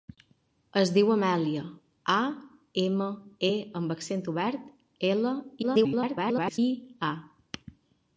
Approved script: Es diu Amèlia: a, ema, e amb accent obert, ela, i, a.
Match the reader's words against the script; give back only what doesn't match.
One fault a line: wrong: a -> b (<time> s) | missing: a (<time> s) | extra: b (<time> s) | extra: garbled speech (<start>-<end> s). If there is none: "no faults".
extra: garbled speech (5.6-6.6 s)